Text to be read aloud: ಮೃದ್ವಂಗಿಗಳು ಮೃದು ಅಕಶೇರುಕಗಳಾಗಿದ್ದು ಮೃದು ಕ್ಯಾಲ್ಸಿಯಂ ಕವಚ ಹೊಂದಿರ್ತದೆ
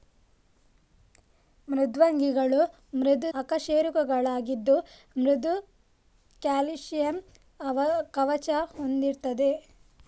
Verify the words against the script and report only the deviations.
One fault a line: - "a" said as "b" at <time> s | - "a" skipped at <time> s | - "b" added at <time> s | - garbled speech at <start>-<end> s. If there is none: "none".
none